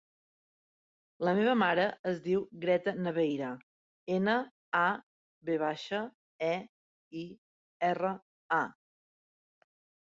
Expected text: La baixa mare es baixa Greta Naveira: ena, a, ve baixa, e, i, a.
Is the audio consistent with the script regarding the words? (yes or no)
no